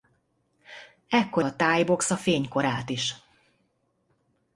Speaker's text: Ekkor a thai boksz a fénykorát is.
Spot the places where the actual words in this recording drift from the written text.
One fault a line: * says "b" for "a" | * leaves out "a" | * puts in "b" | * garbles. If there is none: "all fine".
all fine